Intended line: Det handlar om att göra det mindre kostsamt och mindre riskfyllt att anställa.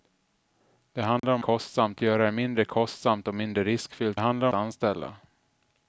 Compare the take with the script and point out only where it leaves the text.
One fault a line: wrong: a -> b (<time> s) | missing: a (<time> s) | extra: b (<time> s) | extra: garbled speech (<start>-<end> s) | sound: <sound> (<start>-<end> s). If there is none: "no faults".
sound: dropout (1.2-1.2 s)
wrong: att -> kostsamt (1.4 s)
wrong: att -> handlar (4.2 s)